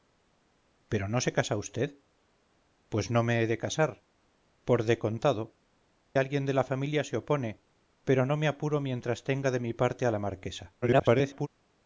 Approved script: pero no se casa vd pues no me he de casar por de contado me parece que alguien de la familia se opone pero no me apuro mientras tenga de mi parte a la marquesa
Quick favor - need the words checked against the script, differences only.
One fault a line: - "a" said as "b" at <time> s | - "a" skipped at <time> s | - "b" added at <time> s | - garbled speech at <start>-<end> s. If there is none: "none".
- "me parece que" skipped at 5.6 s
- garbled speech at 10.8-11.5 s